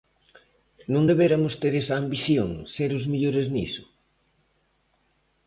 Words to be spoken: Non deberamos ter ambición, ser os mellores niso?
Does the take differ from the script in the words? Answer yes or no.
yes